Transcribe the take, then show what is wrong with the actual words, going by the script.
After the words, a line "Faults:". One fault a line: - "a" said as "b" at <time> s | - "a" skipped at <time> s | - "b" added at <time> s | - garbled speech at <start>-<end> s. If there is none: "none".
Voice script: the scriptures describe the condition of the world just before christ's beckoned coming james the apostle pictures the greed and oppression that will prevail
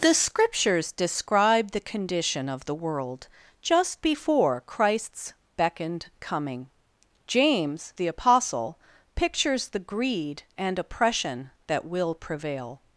the scriptures describe the condition of the world just before christ's beckoned coming james the apostle pictures the greed and oppression that will prevail
Faults:
none